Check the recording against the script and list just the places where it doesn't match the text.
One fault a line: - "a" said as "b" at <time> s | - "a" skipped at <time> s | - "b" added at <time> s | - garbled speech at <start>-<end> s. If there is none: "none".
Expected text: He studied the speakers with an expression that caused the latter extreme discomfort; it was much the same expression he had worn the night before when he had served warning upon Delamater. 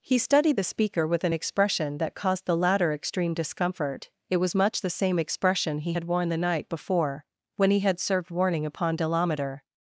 - "speakers" said as "speaker" at 0.6 s